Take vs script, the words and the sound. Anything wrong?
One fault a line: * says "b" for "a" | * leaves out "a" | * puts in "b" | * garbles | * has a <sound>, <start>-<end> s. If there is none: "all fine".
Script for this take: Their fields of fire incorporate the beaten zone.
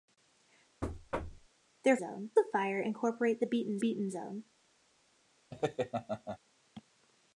* has a thud, 0.8-1.5 s
* says "zone" for "fields"
* puts in "beaten"
* has a laugh, 5.5-6.4 s